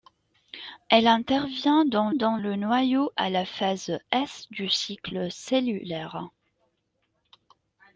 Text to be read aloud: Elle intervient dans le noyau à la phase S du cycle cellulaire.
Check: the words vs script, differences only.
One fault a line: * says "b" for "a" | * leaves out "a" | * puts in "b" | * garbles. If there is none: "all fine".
* puts in "dans"